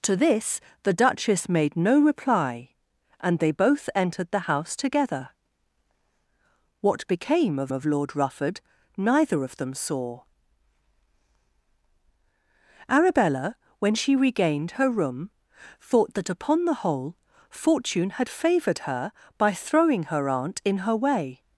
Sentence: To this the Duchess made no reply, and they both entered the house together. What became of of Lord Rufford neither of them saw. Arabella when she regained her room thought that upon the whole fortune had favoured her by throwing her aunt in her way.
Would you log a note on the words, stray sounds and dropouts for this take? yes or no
no